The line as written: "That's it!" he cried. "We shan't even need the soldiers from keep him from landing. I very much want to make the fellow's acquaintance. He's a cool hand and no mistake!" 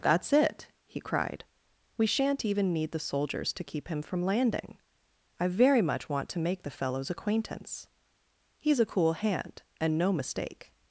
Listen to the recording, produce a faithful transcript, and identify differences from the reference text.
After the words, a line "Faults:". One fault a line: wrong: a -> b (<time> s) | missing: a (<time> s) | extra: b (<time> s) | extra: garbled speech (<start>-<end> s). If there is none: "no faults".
"That's it!" he cried. "We shan't even need the soldiers to keep him from landing. I very much want to make the fellow's acquaintance. He's a cool hand and no mistake!"
Faults:
wrong: from -> to (3.5 s)